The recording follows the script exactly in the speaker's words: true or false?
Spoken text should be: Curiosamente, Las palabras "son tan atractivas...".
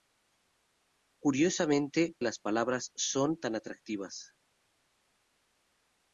true